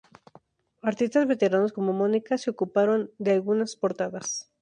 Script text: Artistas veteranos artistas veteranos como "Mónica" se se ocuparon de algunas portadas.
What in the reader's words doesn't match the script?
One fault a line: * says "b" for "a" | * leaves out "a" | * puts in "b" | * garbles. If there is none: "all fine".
* leaves out "artistas veteranos"
* leaves out "se"